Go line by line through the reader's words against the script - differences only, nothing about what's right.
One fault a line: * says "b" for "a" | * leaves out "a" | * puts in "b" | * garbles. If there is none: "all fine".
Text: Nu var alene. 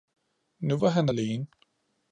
* puts in "han"